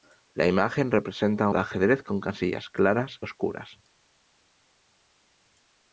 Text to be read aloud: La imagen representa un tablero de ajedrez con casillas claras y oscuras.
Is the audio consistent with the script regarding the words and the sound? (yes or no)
no